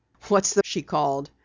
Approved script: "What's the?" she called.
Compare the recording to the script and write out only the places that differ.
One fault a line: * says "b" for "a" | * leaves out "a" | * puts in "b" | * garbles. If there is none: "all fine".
all fine